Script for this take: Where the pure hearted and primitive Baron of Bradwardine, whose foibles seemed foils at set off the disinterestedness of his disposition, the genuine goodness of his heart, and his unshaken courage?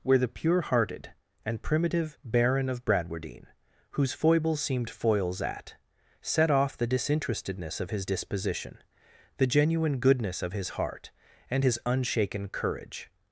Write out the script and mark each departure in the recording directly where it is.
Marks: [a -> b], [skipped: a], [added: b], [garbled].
Where the pure hearted and primitive Baron of Bradwardine, whose foibles seemed foils at set off the disinterestedness of his disposition, the genuine goodness of his heart, and his unshaken courage?